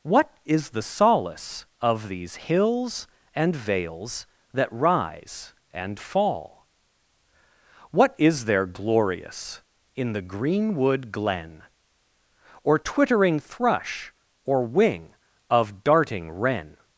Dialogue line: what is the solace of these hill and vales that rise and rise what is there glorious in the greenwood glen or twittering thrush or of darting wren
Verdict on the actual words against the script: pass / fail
fail